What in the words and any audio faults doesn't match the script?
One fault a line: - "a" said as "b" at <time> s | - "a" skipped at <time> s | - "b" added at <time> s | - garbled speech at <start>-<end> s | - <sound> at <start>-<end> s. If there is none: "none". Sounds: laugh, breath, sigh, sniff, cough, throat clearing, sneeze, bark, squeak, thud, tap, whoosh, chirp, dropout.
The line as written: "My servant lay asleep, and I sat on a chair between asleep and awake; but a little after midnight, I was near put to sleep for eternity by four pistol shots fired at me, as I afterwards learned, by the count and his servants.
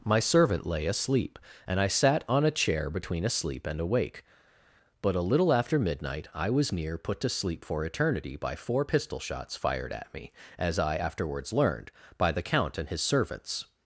none